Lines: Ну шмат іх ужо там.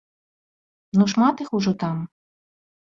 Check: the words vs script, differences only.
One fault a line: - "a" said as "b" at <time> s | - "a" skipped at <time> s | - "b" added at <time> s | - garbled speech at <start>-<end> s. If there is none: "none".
none